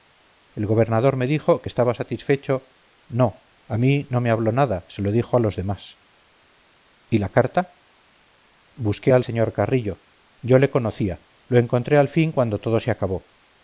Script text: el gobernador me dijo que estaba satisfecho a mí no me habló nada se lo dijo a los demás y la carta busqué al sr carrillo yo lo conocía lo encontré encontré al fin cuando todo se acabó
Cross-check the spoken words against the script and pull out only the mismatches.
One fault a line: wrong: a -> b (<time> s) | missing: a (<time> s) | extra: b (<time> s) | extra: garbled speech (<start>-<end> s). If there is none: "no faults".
extra: no (3.1 s)
wrong: lo -> le (10.6 s)
missing: encontré (12.0 s)